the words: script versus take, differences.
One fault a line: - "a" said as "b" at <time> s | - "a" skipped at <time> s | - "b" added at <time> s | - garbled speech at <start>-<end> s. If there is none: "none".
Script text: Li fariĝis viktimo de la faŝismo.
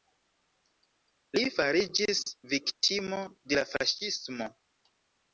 none